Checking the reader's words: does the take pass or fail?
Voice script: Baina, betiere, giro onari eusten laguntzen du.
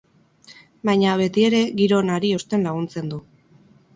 pass